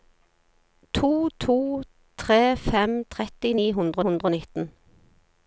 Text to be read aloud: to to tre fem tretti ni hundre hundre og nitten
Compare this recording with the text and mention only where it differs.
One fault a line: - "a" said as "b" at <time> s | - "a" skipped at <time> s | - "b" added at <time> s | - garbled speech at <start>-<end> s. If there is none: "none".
none